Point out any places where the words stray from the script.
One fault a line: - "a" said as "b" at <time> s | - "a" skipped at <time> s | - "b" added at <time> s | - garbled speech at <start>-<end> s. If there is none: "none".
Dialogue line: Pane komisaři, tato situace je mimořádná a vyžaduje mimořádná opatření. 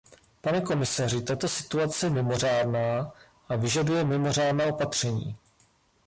none